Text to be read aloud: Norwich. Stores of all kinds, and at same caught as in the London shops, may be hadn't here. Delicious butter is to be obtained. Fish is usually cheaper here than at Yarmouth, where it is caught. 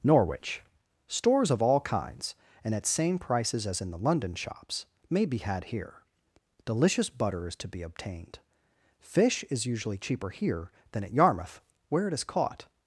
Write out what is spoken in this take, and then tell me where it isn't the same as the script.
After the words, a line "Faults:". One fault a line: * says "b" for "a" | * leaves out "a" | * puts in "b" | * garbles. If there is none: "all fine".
Norwich. Stores of all kinds, and at same prices as in the London shops, may be had here. Delicious butter is to be obtained. Fish is usually cheaper here than at Yarmouth, where it is caught.
Faults:
* says "prices" for "caught"
* says "had" for "hadn't"